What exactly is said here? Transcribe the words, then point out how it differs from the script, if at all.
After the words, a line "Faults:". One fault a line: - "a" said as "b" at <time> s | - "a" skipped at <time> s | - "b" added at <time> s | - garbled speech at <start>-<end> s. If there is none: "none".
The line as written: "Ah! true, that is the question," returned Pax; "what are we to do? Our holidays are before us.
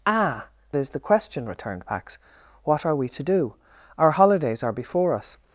"Ah! is the question," returned Pax; "what are we to do? Our holidays are before us.
Faults:
- "true that" skipped at 0.5 s